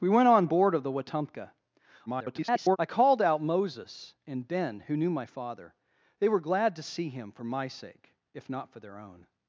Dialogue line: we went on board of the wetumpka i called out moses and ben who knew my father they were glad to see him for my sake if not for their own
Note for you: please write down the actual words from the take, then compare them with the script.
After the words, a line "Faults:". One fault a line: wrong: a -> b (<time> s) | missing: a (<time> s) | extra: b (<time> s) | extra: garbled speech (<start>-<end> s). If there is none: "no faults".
we went on board of the wetumpka [garbled] i called out moses and ben who knew my father they were glad to see him for my sake if not for their own
Faults:
extra: garbled speech (2.1-2.8 s)